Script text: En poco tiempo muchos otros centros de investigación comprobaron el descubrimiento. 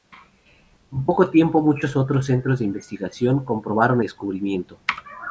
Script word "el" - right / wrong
wrong